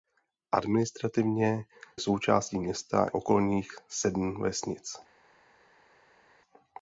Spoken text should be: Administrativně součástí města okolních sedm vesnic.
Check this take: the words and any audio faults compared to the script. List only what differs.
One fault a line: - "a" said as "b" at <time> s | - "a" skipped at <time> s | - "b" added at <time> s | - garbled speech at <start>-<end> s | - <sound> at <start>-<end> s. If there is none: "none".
none